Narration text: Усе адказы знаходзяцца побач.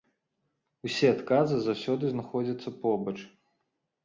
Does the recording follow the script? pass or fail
fail